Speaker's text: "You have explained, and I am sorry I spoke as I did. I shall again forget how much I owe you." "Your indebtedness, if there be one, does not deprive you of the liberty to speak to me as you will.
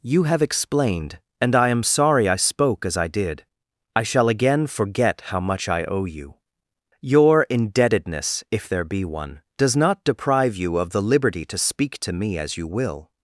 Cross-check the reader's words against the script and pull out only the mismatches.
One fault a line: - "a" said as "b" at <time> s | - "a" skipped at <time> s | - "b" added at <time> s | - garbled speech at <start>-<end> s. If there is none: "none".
none